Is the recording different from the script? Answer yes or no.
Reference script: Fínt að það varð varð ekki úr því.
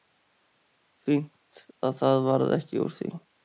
yes